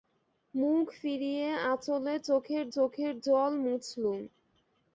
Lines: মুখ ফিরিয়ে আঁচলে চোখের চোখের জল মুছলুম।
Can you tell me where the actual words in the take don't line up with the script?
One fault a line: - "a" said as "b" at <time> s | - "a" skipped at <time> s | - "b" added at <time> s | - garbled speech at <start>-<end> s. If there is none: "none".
none